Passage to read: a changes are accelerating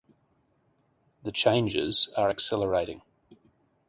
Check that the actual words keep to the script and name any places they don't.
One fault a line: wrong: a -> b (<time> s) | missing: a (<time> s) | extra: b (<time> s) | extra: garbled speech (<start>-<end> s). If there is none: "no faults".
wrong: a -> the (1.2 s)